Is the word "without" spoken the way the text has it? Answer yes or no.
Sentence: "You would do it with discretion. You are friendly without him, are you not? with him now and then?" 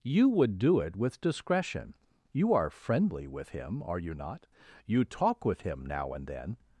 no